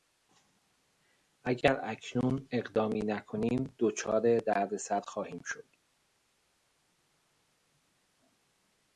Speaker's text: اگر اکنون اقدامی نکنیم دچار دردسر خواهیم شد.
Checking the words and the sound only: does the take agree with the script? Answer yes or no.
yes